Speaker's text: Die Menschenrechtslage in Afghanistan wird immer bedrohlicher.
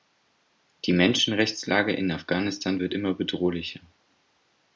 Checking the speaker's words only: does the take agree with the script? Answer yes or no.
yes